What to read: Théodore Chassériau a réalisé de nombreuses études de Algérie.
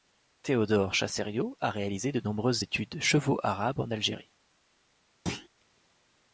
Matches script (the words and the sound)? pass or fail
fail